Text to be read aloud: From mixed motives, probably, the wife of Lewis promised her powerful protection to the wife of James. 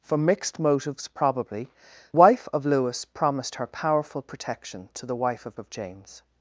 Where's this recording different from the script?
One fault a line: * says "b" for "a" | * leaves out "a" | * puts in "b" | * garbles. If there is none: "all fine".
* leaves out "the"
* puts in "of"